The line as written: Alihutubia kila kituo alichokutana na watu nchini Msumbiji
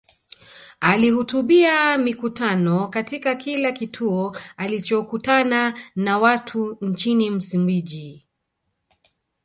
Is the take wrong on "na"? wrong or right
right